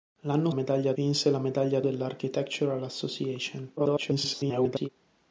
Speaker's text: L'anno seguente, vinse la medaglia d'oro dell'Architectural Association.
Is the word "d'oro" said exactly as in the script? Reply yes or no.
no